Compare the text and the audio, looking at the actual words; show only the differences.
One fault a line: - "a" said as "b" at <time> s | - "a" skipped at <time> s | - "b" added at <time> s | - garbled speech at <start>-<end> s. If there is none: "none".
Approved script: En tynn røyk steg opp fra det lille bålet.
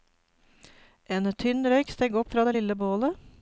none